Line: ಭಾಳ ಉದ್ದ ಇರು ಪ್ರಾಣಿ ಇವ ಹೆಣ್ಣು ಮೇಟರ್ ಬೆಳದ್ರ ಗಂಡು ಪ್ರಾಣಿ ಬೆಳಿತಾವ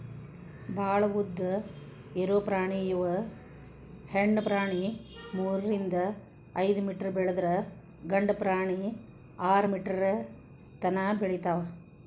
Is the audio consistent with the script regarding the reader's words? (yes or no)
no